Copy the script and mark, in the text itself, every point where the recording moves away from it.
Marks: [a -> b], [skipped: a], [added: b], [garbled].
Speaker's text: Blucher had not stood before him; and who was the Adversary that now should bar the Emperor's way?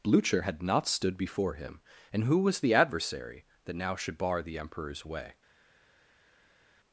Blucher had not stood before him; and who was the Adversary that now should bar the Emperor's way?